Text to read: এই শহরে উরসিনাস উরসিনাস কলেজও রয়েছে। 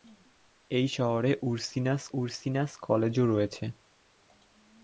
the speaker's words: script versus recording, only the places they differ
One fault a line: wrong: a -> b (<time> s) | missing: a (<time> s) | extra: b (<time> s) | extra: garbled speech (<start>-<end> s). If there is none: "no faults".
no faults